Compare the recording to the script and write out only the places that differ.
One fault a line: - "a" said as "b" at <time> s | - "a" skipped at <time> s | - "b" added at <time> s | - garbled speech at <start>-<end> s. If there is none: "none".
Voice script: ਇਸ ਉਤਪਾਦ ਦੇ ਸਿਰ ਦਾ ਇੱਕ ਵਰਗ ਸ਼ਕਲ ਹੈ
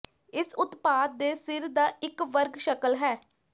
none